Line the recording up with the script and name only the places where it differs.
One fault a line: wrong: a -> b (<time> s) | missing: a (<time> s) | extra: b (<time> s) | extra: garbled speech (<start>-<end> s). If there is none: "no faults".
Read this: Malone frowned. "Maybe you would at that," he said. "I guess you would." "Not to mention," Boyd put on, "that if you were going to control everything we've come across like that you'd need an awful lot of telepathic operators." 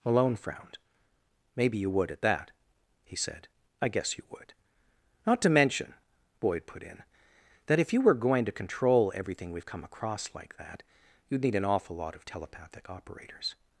wrong: on -> in (6.8 s)